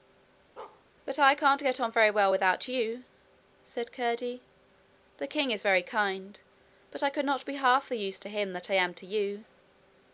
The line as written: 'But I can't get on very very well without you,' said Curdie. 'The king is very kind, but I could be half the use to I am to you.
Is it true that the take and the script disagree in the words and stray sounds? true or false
true